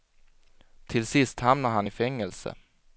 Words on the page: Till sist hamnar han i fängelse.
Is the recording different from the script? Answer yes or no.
no